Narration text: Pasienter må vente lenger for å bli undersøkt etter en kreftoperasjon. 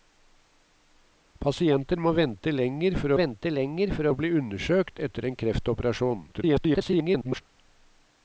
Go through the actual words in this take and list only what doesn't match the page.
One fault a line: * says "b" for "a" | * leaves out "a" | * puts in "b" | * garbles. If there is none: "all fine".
* puts in "vente lenger for"
* garbles